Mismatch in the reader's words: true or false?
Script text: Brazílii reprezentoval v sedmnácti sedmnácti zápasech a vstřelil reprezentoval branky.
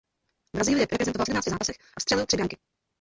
true